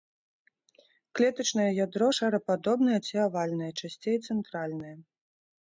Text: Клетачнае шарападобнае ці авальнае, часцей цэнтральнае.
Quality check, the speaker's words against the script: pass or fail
fail